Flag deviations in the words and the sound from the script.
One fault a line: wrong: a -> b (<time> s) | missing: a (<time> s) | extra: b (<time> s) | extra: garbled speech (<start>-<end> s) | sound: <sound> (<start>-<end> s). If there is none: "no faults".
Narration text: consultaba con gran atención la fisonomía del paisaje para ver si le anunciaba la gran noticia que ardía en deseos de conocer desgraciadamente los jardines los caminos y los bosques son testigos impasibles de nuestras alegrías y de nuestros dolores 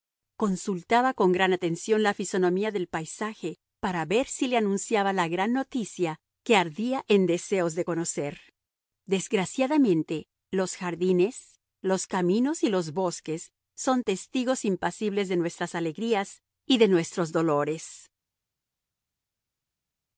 no faults